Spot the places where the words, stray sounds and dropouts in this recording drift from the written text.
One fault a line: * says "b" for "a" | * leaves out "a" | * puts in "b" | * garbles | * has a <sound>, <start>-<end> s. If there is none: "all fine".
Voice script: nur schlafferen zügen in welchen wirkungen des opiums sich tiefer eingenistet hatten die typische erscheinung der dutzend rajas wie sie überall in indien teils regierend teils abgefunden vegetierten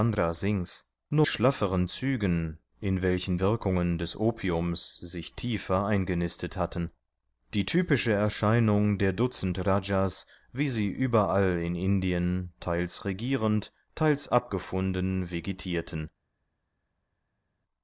all fine